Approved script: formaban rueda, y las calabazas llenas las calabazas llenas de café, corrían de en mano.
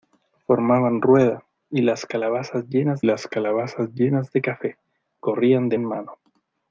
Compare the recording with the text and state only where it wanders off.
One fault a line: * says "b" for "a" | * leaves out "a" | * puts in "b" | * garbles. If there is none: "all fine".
all fine